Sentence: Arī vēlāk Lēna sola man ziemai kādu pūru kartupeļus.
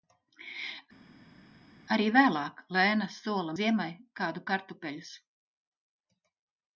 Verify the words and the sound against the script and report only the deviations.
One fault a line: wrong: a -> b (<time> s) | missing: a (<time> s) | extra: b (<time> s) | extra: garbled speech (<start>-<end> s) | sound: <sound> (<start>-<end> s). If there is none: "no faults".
missing: man (3.6 s)
missing: pūru (4.5 s)